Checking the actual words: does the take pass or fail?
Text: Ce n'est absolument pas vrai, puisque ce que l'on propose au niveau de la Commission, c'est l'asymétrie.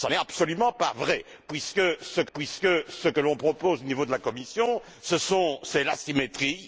fail